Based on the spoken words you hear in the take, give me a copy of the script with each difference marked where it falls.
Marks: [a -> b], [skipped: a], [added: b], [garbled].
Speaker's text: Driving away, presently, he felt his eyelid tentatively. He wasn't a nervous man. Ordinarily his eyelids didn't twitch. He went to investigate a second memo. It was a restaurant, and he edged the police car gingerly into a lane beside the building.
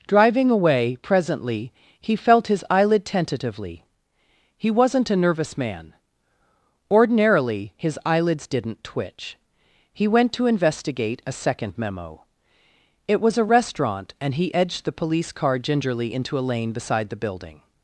Driving away, presently, he felt his eyelid tentatively. He wasn't a nervous man. Ordinarily his eyelids didn't twitch. He went to investigate a second memo. It was a restaurant, and he edged the police car gingerly into a lane beside the building.